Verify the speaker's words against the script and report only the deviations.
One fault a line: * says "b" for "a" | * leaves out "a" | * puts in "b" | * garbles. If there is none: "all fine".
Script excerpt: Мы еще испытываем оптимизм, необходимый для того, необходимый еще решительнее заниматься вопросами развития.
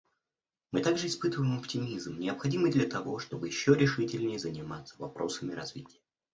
* says "также" for "еще"
* says "чтобы" for "необходимый"